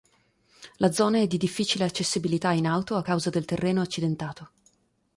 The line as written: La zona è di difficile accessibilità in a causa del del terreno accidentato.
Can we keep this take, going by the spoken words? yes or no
no